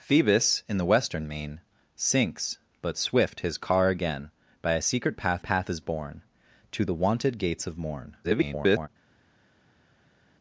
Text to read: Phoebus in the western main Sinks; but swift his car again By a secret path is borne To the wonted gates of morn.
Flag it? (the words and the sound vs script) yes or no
yes